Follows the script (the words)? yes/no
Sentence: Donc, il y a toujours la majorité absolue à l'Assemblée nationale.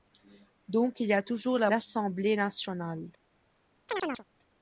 no